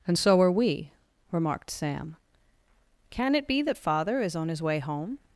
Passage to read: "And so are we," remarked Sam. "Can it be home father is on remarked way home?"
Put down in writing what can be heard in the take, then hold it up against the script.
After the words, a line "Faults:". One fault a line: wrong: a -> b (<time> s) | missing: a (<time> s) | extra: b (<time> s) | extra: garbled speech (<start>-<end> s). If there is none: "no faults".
"And so are we," remarked Sam. "Can it be that father is on his way home?"
Faults:
wrong: home -> that (3.6 s)
wrong: remarked -> his (4.5 s)